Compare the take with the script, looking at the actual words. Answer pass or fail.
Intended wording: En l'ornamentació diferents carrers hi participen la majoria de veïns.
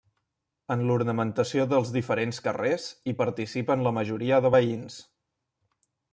fail